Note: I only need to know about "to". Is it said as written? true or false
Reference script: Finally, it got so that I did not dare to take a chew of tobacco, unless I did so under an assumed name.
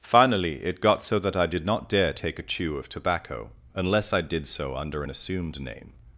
false